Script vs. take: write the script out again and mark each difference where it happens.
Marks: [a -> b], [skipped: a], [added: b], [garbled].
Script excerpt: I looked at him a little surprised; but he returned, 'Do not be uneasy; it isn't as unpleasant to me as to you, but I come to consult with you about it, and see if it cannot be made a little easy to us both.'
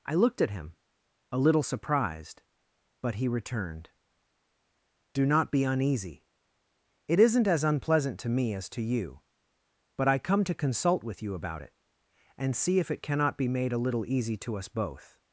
I looked at him a little surprised; but he returned, 'Do not be uneasy; it isn't as unpleasant to me as to you, but I come to consult with you about it, and see if it cannot be made a little easy to us both.'